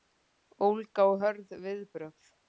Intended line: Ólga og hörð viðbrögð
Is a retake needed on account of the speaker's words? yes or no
no